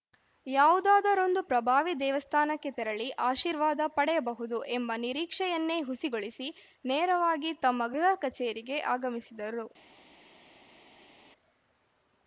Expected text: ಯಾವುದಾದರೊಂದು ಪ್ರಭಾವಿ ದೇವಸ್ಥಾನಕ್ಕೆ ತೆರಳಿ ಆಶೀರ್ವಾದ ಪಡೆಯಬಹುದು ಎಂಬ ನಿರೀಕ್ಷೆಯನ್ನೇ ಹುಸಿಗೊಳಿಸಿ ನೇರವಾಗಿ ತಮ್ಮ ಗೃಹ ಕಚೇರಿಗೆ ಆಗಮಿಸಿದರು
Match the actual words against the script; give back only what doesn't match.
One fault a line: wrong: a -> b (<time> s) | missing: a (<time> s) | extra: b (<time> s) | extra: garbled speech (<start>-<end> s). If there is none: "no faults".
no faults